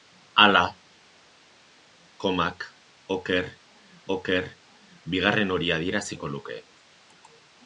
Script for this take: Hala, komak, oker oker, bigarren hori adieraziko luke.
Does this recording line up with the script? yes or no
yes